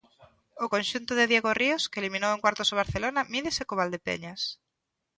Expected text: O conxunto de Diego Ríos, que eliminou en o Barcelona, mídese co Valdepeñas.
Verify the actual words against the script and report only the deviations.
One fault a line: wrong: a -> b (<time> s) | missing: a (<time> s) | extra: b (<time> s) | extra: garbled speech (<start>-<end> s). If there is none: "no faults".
extra: cuartos (2.4 s)